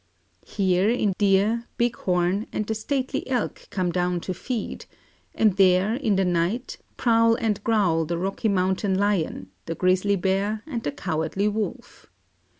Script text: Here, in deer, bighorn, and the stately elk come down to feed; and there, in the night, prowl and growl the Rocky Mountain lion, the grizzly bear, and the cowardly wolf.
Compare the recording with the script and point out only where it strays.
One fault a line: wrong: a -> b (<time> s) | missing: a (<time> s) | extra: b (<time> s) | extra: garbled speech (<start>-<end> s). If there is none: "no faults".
no faults